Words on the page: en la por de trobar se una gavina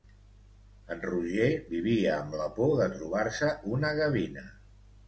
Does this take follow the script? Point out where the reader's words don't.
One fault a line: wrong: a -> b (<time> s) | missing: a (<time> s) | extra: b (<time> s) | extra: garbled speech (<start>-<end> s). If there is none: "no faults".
extra: roger vivia amb (1.0 s)